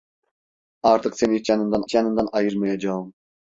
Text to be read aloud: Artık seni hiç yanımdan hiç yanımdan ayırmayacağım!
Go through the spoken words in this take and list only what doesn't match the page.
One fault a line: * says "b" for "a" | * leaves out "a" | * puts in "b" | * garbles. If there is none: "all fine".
all fine